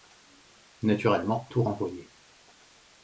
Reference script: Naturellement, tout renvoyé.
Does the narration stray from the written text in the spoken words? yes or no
no